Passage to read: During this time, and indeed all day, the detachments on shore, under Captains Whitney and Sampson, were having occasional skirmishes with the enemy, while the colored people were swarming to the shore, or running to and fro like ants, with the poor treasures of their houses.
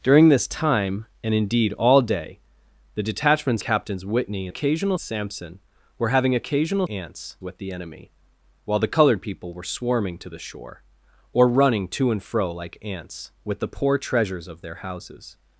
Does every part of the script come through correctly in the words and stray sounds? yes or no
no